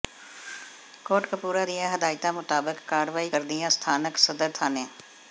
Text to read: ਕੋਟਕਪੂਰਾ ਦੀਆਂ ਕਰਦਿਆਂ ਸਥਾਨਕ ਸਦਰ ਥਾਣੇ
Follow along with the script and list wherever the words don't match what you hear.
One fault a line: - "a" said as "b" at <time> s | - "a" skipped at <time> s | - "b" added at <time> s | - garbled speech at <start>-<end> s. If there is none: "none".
- "ਹਦਾਇਤਾਂ ਮੁਤਾਬਕ ਕਾਰਵਾਈ" added at 1.9 s